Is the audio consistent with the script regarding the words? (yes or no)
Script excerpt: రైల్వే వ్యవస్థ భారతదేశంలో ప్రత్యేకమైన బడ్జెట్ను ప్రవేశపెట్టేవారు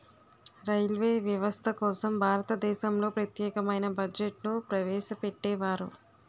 no